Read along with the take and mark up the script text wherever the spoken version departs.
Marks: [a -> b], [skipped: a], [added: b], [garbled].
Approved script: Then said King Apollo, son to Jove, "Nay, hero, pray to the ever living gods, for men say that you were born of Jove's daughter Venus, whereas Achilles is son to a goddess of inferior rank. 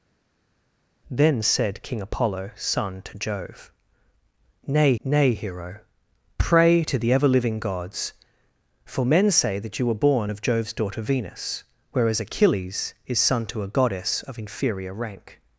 Then said King Apollo, son to Jove, "Nay, [added: nay] hero, pray to the ever living gods, for men say that you were born of Jove's daughter Venus, whereas Achilles is son to a goddess of inferior rank.